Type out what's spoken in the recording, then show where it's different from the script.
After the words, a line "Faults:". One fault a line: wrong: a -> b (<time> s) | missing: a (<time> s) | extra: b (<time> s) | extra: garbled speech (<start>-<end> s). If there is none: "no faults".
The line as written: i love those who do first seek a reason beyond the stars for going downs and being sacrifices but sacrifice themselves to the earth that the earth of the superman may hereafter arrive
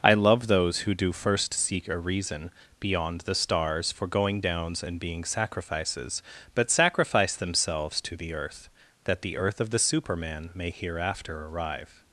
i love those who do first seek a reason beyond the stars for going downs and being sacrifices but sacrifice themselves to the earth that the earth of the superman may hereafter arrive
Faults:
no faults